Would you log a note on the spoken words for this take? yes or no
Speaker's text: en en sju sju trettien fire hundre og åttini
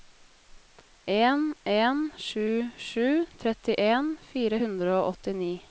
no